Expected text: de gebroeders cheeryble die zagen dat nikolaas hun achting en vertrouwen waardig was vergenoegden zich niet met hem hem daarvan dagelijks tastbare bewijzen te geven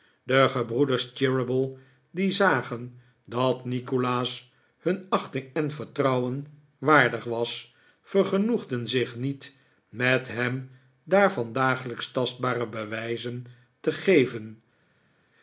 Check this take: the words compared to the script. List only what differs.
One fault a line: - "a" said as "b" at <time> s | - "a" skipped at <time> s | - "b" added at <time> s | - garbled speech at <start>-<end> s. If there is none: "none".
- "hem" skipped at 10.7 s